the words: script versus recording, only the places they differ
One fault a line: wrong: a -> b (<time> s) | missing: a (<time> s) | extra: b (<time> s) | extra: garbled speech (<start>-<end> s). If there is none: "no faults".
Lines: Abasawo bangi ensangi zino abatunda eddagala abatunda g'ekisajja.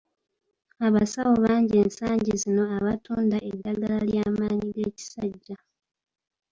wrong: abatunda -> ly'amaanyi (4.1 s)